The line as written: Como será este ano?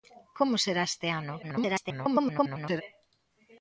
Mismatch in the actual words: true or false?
true